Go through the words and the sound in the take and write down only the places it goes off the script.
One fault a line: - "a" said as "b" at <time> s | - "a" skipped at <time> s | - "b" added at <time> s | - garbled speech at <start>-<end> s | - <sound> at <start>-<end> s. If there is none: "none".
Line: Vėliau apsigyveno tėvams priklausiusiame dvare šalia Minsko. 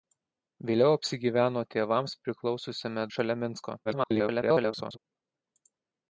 - "dvare" skipped at 3.0 s
- garbled speech at 3.8-5.0 s